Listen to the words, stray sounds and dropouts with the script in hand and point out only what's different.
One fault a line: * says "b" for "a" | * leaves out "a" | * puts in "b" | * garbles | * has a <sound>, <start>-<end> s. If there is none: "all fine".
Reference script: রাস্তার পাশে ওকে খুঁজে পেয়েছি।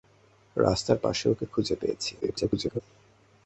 * garbles